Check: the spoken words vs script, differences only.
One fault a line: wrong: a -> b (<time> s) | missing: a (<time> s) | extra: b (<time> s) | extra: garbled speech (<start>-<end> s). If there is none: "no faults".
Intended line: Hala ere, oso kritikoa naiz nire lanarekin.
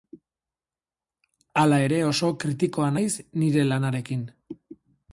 no faults